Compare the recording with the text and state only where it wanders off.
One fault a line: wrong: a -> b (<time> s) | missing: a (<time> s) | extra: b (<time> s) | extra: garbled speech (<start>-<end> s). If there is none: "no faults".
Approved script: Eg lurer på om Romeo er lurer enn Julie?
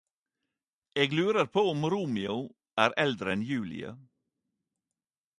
wrong: lurer -> eldre (3.0 s)